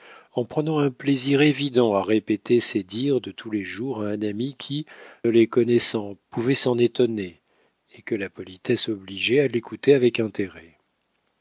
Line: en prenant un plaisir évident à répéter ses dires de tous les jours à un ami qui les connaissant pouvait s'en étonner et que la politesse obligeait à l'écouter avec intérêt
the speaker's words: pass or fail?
pass